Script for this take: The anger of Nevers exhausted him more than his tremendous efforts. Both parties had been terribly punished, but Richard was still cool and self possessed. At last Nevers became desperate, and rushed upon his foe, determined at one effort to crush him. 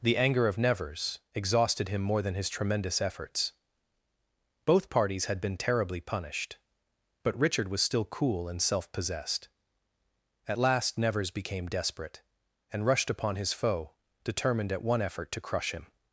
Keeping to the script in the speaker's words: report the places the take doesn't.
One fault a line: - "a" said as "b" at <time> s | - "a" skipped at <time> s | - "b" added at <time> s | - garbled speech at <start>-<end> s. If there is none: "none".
none